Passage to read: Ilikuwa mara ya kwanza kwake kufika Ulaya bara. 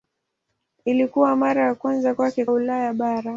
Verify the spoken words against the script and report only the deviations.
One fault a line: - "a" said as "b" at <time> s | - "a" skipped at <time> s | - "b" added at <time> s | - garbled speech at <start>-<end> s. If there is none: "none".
- "kufika" skipped at 2.5 s